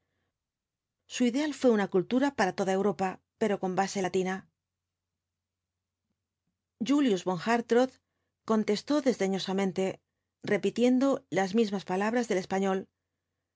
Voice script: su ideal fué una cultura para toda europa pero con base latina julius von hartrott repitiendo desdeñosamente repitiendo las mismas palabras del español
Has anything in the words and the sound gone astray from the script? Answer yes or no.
yes